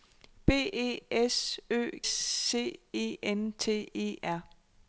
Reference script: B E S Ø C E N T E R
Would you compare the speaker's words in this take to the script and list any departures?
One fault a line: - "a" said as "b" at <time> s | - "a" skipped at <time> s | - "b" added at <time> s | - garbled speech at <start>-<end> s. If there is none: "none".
none